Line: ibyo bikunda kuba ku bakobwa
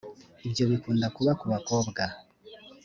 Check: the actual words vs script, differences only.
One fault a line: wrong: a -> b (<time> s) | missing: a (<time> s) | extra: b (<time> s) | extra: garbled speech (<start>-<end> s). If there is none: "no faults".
no faults